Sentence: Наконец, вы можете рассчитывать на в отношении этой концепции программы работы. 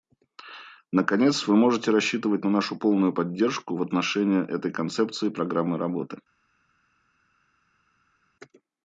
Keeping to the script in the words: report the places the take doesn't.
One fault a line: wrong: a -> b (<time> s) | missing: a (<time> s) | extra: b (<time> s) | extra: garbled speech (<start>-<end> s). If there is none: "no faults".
extra: нашу полную поддержку (2.5 s)